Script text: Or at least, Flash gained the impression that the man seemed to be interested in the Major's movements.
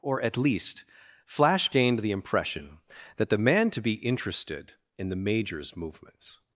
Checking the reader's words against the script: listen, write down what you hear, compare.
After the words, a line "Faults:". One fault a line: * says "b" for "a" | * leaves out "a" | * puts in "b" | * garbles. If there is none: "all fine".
Or at least, Flash gained the impression that the man to be interested in the Major's movements.
Faults:
* leaves out "seemed"